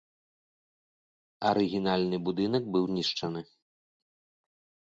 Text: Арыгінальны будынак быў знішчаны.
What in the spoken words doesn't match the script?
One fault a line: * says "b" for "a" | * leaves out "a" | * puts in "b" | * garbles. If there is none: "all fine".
all fine